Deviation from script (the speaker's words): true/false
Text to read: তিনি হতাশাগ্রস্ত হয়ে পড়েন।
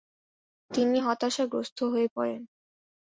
false